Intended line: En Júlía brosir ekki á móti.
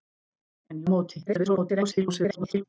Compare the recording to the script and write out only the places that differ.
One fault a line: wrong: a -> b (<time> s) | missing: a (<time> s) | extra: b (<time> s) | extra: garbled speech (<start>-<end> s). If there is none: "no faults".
missing: Júlía brosir ekki (0.8 s)
extra: garbled speech (1.3-2.6 s)